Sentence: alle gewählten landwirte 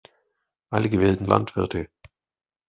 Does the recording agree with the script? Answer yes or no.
yes